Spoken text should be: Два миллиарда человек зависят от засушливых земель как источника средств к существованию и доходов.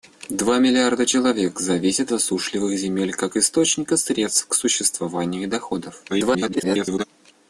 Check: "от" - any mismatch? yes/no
yes